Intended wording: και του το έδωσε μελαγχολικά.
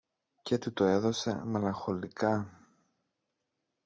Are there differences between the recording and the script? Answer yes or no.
no